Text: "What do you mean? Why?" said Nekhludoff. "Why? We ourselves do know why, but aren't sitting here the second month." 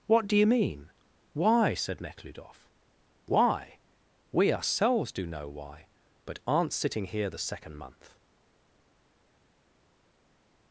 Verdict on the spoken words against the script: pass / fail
pass